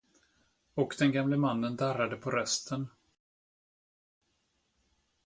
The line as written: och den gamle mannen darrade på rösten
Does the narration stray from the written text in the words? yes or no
no